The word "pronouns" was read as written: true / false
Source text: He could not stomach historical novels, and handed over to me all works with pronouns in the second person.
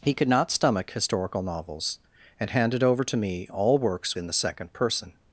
false